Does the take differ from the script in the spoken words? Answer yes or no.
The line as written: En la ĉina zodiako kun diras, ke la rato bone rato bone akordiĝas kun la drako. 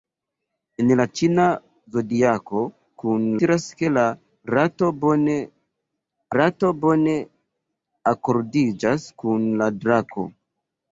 no